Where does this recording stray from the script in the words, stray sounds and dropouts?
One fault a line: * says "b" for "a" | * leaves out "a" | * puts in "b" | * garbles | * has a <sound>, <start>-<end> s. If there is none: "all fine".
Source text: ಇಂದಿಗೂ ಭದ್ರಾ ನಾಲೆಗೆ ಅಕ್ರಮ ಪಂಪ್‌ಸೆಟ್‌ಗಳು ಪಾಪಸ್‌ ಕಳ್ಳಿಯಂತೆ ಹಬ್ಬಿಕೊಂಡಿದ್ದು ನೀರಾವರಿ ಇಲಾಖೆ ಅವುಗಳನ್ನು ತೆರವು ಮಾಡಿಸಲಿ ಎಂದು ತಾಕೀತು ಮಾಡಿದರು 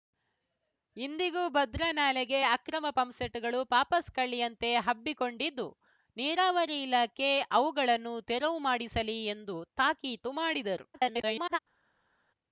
* garbles